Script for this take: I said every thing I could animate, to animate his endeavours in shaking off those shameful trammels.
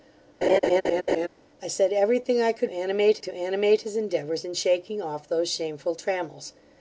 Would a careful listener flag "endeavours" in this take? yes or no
no